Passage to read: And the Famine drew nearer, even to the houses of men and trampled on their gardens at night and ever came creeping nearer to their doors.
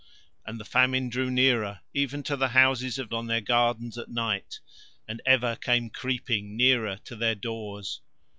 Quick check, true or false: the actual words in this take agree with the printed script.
false